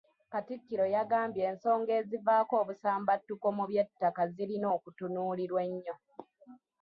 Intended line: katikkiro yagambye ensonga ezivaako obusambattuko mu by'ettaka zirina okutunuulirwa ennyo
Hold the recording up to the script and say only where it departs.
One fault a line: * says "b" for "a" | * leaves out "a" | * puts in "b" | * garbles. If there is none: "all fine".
all fine